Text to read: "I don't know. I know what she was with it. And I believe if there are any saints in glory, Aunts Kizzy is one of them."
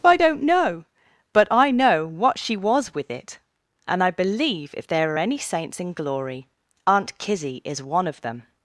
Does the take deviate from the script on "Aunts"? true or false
true